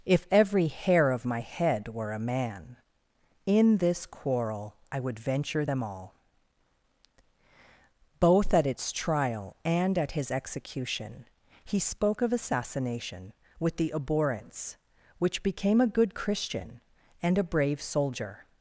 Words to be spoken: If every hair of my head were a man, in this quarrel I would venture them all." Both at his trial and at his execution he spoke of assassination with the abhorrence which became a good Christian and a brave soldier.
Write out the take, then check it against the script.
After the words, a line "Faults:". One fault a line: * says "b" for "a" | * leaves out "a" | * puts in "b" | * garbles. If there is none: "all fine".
If every hair of my head were a man, in this quarrel I would venture them all." Both at its trial and at his execution he spoke of assassination with the abhorrence which became a good Christian and a brave soldier.
Faults:
* says "its" for "his"